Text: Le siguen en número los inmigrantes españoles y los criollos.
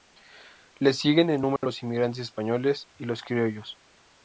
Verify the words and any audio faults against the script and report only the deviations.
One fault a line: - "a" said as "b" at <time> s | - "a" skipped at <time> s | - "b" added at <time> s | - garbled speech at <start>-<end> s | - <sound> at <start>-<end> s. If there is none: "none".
- dropout at 1.6-1.6 s